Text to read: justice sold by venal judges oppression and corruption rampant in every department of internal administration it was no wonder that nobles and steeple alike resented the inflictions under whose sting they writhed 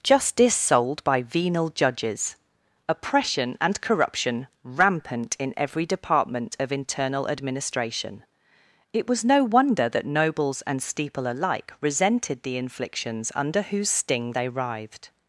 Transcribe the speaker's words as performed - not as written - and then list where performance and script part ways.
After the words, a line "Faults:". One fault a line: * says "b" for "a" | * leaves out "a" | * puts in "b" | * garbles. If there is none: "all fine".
justice sold by venal judges oppression and corruption rampant in every department of internal administration it was no wonder that nobles and steeple alike resented the inflictions under whose sting they writhed
Faults:
all fine